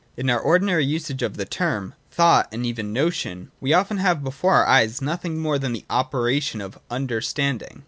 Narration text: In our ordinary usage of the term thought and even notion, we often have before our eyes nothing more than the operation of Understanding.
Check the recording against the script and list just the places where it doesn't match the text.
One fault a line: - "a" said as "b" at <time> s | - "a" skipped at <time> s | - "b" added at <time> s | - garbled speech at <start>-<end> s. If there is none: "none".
none